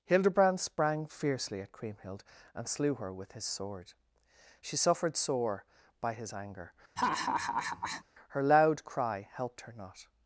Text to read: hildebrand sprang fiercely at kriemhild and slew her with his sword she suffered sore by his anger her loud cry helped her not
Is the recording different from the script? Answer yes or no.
no